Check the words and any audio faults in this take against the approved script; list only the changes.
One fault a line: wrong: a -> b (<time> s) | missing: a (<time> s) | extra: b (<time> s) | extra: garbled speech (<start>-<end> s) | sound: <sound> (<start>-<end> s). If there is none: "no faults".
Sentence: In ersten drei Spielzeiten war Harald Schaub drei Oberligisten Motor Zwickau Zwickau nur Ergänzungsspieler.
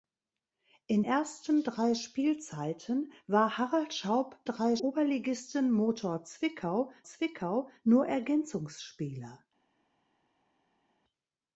no faults